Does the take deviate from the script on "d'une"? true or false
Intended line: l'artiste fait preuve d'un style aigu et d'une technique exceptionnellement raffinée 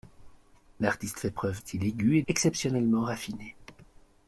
true